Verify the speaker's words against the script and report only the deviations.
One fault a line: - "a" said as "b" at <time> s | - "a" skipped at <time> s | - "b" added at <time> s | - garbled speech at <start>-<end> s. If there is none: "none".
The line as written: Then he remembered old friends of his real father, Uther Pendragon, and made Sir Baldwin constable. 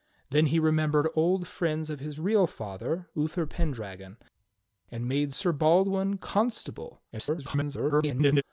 - garbled speech at 7.1-8.4 s